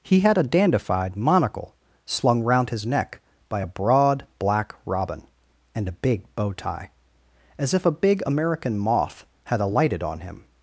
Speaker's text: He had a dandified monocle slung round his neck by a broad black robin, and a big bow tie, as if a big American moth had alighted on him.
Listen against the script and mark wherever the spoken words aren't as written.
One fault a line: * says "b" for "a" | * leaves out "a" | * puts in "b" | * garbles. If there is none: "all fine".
all fine